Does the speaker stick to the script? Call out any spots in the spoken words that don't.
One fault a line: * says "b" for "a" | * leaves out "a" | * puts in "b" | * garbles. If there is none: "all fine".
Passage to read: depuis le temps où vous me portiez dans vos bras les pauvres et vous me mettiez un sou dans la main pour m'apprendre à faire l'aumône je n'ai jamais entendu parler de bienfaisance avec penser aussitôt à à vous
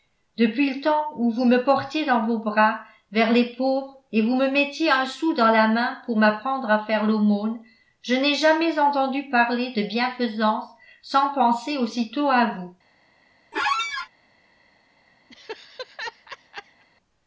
* puts in "vers"
* says "sans" for "avec"
* leaves out "à"